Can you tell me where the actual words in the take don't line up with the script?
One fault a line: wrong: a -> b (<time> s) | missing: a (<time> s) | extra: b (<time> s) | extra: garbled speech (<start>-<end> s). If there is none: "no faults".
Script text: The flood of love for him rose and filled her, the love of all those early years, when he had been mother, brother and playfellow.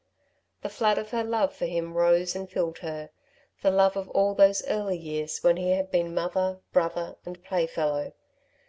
extra: her (1.1 s)